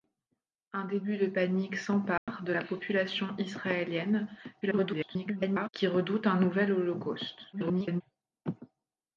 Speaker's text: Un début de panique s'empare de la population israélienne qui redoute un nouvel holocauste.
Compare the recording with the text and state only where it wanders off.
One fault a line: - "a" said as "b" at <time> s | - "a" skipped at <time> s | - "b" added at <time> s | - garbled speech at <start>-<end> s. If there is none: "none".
- garbled speech at 4.6-5.7 s
- garbled speech at 7.5-8.0 s